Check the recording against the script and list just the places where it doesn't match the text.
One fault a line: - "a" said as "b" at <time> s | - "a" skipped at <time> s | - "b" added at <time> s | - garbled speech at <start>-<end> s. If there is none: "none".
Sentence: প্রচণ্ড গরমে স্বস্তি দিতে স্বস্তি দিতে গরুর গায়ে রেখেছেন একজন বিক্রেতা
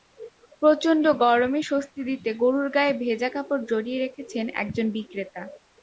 - "স্বস্তি দিতে গরুর গায়ে" said as "গরুর গায়ে ভেজা কাপড় জড়িয়ে" at 2.4 s